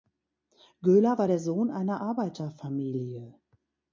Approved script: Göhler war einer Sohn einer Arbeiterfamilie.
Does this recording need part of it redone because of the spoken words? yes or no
yes